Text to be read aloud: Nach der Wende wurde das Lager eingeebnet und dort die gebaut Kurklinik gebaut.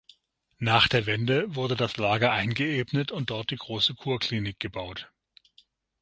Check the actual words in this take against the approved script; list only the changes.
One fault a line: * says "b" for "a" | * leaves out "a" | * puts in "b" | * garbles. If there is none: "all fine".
* says "große" for "gebaut"